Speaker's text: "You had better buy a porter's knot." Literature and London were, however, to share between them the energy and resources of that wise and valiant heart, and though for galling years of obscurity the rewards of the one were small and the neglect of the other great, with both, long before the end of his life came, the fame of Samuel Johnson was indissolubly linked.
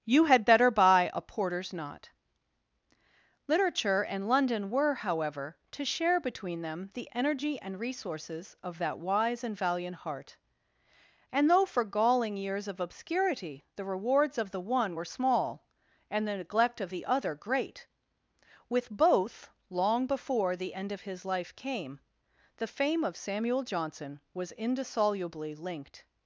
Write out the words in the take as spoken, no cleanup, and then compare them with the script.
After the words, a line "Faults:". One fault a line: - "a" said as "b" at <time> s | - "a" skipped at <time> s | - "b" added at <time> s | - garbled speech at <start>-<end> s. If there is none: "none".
"You had better buy a porter's knot." Literature and London were, however, to share between them the energy and resources of that wise and valiant heart, and though for galling years of obscurity the rewards of the one were small and the neglect of the other great, with both, long before the end of his life came, the fame of Samuel Johnson was indissolubly linked.
Faults:
none